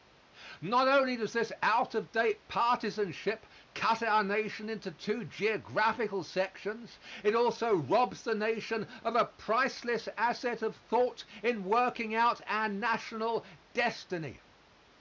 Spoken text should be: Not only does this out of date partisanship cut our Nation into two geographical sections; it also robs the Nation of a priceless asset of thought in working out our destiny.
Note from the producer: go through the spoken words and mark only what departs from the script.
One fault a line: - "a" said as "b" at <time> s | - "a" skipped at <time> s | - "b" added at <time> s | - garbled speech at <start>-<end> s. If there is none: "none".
- "national" added at 12.7 s